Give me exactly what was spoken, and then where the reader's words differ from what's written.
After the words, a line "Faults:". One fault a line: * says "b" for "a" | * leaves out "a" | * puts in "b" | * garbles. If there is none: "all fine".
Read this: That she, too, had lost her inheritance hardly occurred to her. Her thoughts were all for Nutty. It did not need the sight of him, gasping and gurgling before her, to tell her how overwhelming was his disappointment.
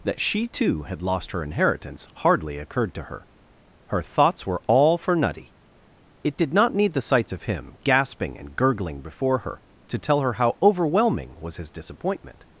That she, too, had lost her inheritance hardly occurred to her. Her thoughts were all for Nutty. It did not need the sights of him, gasping and gurgling before her, to tell her how overwhelming was his disappointment.
Faults:
* says "sights" for "sight"